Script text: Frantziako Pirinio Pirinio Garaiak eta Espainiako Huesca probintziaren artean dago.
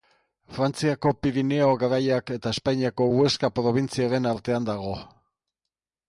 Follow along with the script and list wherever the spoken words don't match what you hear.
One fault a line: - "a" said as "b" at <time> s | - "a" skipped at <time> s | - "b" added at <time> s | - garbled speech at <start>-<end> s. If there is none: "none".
- "Pirinio" skipped at 1.7 s